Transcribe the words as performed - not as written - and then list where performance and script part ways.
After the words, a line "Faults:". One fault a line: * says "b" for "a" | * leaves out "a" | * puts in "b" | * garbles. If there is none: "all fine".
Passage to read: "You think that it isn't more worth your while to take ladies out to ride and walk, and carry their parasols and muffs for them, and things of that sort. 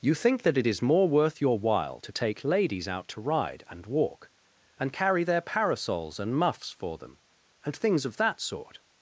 "You think that it is more worth your while to take ladies out to ride and walk, and carry their parasols and muffs for them, and things of that sort.
Faults:
* says "is" for "isn't"